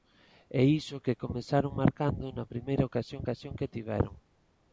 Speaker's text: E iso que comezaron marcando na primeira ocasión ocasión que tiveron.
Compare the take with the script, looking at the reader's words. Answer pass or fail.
pass